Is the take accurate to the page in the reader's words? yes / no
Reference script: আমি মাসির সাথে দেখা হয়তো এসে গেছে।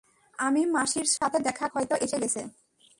yes